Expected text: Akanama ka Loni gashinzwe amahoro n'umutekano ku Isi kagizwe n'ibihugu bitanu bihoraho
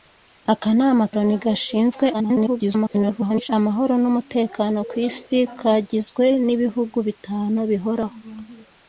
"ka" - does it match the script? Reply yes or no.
no